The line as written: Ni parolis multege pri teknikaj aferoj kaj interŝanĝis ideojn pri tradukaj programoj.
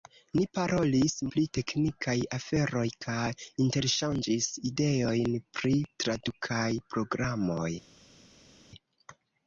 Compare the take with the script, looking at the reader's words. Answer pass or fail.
fail